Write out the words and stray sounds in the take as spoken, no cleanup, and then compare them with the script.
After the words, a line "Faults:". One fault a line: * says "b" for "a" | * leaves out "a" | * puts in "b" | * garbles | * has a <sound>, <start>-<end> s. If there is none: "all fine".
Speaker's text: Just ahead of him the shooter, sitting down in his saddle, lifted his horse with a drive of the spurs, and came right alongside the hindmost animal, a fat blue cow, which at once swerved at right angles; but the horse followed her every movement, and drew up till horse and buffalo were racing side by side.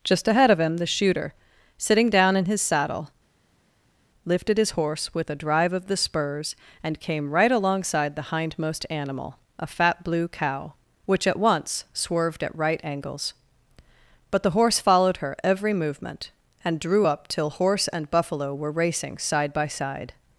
Just ahead of him the shooter, sitting down in his saddle, lifted his horse with a drive of the spurs, and came right alongside the hindmost animal, a fat blue cow, which at once swerved at right angles; but the horse followed her every movement, and drew up till horse and buffalo were racing side by side.
Faults:
all fine